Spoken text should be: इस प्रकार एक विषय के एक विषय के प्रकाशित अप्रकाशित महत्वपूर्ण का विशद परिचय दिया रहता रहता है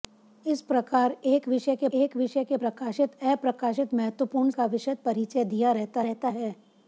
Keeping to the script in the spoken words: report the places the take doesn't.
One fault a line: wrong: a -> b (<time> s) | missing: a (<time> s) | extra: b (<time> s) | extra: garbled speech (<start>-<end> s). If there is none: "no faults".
no faults